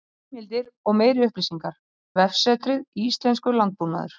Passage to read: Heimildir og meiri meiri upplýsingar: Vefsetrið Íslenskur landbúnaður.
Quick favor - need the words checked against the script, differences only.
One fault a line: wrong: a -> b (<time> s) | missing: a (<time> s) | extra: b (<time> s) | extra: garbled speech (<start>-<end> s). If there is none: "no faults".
missing: meiri (1.3 s)